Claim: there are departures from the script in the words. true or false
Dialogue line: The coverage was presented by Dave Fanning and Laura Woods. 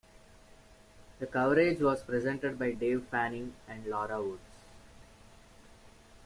false